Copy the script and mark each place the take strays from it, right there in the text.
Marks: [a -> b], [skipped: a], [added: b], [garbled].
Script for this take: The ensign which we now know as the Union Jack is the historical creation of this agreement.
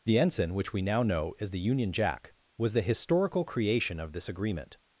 The ensign which we now know as the Union Jack [is -> was] the historical creation of this agreement.